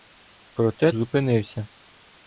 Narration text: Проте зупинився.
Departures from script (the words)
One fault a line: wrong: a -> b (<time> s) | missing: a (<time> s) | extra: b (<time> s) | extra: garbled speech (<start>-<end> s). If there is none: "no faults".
no faults